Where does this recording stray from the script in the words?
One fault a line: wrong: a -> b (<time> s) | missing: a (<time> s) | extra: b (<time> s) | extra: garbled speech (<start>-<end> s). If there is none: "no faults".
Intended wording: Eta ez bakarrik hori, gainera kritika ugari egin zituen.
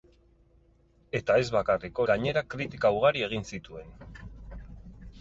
missing: hori (2.0 s)